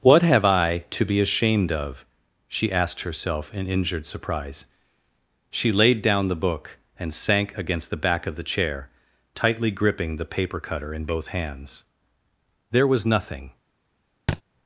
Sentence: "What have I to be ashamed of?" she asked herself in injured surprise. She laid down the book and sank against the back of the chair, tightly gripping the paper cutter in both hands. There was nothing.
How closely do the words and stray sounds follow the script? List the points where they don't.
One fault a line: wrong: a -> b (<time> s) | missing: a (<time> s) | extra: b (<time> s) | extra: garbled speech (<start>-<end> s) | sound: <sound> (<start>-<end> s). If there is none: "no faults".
sound: thud (14.3-14.4 s)